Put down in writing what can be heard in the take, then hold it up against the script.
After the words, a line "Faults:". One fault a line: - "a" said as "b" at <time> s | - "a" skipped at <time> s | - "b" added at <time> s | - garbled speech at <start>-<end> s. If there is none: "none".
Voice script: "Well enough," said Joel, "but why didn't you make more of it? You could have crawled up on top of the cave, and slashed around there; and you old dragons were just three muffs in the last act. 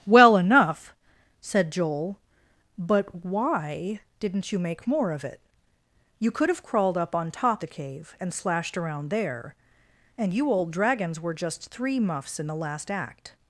"Well enough," said Joel, "but why didn't you make more of it? You could have crawled up on top the cave, and slashed around there; and you old dragons were just three muffs in the last act.
Faults:
- "of" skipped at 7.6 s